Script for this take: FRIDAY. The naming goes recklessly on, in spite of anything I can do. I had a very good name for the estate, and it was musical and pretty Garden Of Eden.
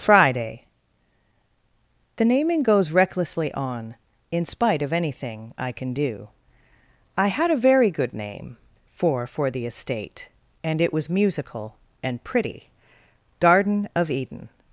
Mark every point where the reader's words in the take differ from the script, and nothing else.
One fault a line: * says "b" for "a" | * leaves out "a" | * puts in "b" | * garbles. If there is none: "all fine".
* puts in "for"